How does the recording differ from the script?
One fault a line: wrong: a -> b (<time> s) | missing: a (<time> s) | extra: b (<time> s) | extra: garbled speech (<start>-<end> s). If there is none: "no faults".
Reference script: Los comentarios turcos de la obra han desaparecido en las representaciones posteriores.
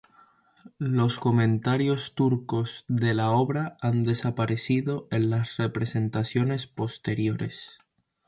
no faults